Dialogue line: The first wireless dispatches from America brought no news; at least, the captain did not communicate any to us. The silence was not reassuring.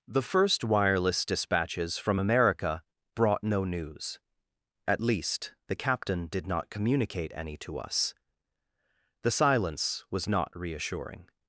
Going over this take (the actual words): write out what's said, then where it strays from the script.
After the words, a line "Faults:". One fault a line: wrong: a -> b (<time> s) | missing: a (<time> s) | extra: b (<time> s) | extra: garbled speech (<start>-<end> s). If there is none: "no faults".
The first wireless dispatches from America brought no news; at least, the captain did not communicate any to us. The silence was not reassuring.
Faults:
no faults